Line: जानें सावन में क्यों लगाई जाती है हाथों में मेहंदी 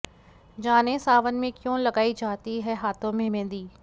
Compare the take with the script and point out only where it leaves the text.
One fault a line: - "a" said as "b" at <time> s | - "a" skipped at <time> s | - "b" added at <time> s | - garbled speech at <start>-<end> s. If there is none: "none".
none